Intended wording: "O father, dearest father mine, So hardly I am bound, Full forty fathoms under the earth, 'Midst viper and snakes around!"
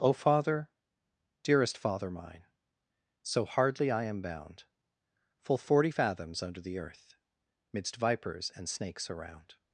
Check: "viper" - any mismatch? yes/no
yes